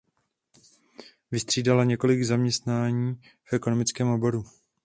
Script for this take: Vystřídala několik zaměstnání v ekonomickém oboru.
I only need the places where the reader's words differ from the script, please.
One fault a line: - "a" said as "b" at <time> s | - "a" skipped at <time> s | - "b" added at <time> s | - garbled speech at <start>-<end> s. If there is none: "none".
none